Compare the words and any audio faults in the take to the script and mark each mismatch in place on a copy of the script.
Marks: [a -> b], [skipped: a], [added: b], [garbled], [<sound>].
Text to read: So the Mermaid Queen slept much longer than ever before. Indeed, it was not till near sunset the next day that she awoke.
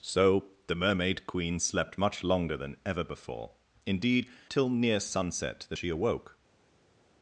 So the Mermaid Queen slept much longer than ever before. Indeed, [skipped: it was not] till near sunset the [skipped: next day that] she awoke.